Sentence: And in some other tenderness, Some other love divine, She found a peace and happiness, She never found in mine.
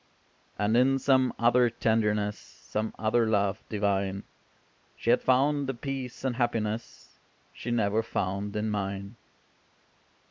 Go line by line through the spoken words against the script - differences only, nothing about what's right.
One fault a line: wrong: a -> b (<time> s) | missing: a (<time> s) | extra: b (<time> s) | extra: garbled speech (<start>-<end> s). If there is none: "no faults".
extra: had (5.1 s)